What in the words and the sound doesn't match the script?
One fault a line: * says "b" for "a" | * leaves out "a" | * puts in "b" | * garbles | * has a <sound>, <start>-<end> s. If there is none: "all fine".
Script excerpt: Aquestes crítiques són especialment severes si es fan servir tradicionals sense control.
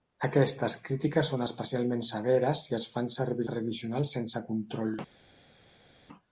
all fine